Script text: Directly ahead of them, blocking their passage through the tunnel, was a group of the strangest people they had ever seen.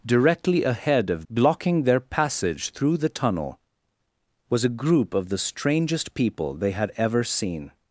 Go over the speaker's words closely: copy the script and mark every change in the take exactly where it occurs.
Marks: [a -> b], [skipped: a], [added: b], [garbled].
Directly ahead of [skipped: them,] blocking their passage through the tunnel, was a group of the strangest people they had ever seen.